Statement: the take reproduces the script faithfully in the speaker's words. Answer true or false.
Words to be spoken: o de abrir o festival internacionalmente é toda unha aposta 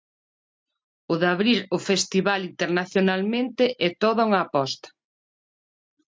true